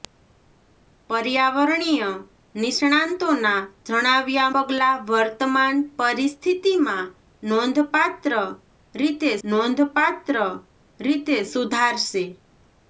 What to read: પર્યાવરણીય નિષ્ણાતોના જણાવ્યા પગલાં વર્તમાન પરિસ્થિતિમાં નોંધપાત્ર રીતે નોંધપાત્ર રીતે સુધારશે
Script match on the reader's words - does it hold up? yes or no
yes